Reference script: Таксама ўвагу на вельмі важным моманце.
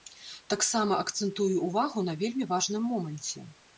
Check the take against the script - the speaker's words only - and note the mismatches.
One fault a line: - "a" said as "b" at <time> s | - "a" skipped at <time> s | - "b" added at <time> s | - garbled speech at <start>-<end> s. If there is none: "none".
- "акцэнтую" added at 1.0 s